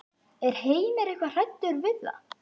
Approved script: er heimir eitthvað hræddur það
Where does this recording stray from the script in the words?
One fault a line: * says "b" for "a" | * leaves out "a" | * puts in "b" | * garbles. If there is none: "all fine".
* puts in "við"